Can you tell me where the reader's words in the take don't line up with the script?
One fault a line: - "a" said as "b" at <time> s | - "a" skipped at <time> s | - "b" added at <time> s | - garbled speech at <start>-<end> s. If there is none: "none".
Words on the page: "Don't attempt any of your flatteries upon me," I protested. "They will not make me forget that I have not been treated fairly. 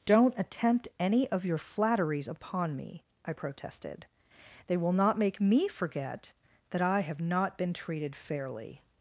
none